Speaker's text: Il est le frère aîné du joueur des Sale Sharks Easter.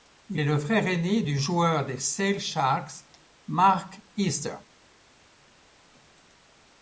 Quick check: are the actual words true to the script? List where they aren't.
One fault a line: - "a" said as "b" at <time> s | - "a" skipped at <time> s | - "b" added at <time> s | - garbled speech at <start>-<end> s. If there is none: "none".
- "Mark" added at 3.5 s